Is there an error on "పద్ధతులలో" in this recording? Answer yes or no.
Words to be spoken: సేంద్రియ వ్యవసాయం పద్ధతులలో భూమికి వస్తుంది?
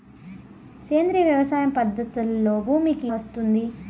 no